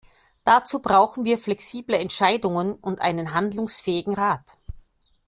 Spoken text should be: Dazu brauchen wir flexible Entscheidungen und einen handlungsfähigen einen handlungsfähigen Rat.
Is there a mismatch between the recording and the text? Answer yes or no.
yes